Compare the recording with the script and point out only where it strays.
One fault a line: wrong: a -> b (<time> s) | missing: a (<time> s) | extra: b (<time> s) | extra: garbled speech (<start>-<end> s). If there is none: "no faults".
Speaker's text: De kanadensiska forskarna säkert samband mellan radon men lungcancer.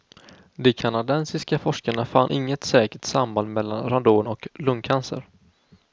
extra: fann inget (2.0 s)
wrong: men -> och (4.3 s)